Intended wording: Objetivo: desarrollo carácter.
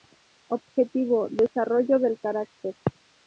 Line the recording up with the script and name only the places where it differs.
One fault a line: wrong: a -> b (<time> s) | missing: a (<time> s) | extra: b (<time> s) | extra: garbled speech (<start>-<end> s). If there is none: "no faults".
extra: del (2.0 s)